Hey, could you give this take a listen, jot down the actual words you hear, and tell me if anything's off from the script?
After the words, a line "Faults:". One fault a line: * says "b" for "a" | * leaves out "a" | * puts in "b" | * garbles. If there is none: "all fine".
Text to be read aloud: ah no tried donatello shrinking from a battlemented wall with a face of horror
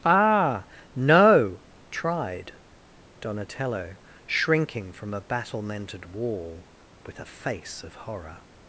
ah no tried donatello shrinking from a battlemented wall with a face of horror
Faults:
all fine